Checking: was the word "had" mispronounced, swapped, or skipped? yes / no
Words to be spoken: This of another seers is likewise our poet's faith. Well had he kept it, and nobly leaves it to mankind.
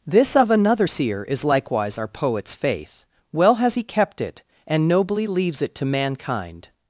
yes